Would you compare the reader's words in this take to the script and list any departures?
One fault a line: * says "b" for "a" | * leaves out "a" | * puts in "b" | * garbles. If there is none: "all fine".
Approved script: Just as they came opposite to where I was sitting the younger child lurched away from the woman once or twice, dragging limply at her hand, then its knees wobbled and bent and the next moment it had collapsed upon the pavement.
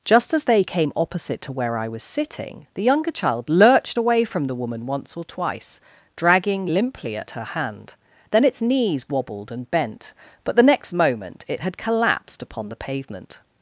* says "but" for "and"